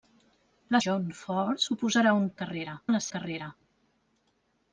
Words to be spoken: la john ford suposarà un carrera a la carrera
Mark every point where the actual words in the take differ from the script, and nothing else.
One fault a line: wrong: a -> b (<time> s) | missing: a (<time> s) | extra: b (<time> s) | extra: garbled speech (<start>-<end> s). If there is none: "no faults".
no faults